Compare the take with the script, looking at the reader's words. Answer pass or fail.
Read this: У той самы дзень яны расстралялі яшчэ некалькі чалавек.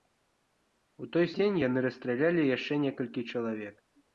fail